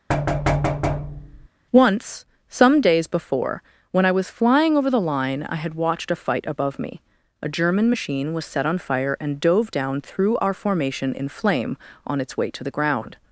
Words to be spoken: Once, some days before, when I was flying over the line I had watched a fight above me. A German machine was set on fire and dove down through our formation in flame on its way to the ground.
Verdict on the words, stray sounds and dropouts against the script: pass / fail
fail